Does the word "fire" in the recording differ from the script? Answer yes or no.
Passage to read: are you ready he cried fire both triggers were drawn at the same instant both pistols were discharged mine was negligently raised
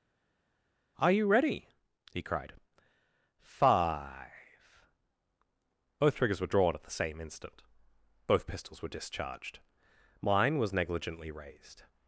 yes